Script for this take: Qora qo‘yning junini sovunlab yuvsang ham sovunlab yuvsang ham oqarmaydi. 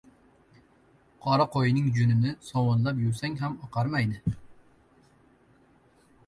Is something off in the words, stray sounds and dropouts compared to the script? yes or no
yes